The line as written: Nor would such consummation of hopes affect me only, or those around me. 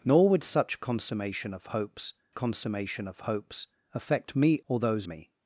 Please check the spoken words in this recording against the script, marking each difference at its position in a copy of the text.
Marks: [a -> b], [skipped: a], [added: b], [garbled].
Nor would such consummation of hopes [added: consummation of hopes] affect me [skipped: only,] or those [skipped: around] me.